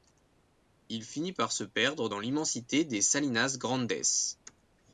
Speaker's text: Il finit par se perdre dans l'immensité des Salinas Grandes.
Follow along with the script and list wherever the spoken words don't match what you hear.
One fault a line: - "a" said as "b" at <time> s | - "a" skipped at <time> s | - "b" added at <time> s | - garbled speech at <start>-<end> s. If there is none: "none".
none